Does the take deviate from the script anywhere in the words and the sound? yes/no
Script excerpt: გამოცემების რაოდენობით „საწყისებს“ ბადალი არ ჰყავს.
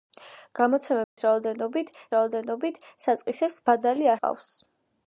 yes